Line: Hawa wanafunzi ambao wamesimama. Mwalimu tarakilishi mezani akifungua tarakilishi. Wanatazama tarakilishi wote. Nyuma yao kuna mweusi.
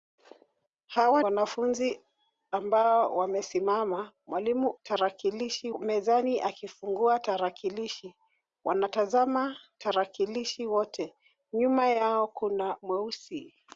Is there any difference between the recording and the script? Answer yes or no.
no